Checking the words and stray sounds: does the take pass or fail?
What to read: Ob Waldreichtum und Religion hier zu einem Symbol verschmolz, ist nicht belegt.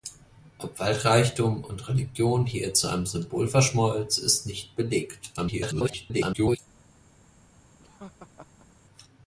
fail